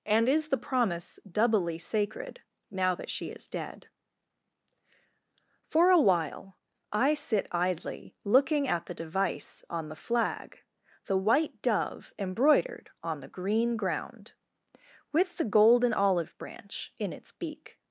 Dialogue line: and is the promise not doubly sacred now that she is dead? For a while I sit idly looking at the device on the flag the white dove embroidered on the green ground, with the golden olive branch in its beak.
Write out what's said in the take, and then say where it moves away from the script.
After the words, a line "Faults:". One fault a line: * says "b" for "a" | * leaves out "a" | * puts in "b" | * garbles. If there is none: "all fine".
and is the promise doubly sacred now that she is dead? For a while I sit idly looking at the device on the flag the white dove embroidered on the green ground, with the golden olive branch in its beak.
Faults:
* leaves out "not"